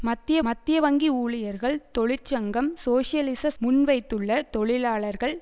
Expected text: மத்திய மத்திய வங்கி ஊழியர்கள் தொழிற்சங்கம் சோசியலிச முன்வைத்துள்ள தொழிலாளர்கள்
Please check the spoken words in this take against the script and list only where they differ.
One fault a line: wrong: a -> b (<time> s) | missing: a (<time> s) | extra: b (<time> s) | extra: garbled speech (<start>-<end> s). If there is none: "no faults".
no faults